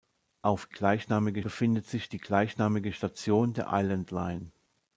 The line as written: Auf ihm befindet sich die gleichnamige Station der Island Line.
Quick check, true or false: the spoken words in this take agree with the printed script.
false